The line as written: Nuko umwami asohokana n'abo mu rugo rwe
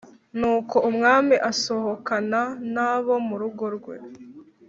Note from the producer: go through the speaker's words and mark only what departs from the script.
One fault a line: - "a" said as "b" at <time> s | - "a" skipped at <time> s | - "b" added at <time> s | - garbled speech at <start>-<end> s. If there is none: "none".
none